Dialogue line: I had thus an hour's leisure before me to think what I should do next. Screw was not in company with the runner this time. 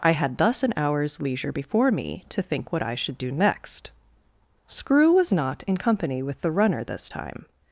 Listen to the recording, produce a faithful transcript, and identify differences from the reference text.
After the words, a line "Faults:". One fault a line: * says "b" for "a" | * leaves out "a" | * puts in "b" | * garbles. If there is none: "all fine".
I had thus an hour's leisure before me to think what I should do next. Screw was not in company with the runner this time.
Faults:
all fine